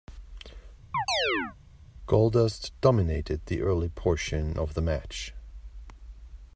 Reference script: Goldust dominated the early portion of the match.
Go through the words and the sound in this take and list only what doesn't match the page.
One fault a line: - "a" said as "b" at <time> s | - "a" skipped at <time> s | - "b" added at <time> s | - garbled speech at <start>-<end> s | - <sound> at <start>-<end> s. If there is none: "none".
- chirp at 0.9-1.6 s